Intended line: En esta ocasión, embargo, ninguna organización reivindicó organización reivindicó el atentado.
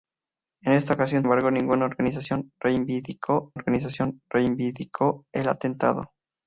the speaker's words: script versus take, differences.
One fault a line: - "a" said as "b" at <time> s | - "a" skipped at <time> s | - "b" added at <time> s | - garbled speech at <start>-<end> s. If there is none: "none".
none